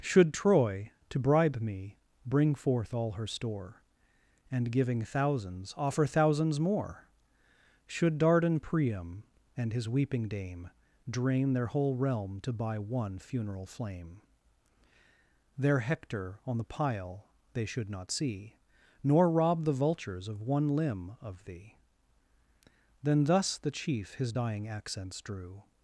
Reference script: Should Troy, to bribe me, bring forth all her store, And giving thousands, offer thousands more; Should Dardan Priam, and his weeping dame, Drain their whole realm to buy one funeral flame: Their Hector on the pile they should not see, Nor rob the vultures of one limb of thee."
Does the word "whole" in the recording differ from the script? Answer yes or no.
no